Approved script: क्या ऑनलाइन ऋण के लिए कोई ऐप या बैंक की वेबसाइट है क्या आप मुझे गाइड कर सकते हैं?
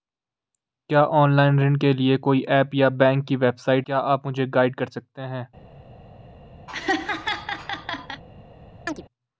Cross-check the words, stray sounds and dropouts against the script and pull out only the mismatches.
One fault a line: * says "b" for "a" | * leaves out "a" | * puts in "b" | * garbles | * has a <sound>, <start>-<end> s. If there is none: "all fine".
* leaves out "है"
* has a laugh, 6.7-8.2 s
* has a chirp, 8.9-9.0 s